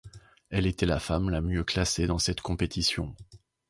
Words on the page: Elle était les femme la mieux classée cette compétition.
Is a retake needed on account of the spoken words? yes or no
yes